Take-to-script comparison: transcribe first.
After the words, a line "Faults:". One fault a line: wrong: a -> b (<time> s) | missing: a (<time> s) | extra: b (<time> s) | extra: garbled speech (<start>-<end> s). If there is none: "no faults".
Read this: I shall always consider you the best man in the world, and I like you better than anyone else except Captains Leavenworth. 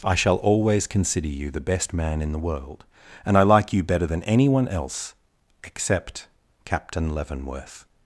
I shall always consider you the best man in the world, and I like you better than anyone else except Captain Leavenworth.
Faults:
wrong: Captains -> Captain (6.7 s)